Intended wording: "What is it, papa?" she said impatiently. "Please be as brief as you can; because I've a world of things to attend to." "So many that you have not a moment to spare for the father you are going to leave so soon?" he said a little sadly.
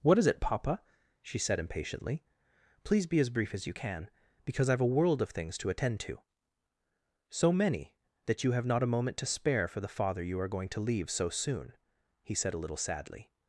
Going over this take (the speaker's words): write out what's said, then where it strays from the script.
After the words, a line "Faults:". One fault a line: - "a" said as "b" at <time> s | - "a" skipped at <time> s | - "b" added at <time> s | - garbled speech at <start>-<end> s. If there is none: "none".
"What is it, papa?" she said impatiently. "Please be as brief as you can; because I've a world of things to attend to." "So many that you have not a moment to spare for the father you are going to leave so soon?" he said a little sadly.
Faults:
none